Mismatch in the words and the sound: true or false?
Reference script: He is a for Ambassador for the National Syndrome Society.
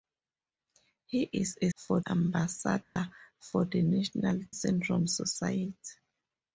true